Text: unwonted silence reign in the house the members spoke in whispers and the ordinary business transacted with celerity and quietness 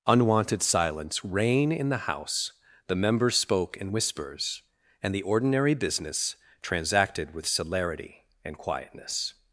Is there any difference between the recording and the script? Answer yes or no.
no